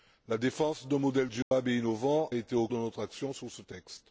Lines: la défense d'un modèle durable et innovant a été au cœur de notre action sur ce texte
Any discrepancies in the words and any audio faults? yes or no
yes